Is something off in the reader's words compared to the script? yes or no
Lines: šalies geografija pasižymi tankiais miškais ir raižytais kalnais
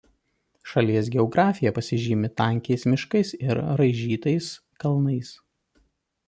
no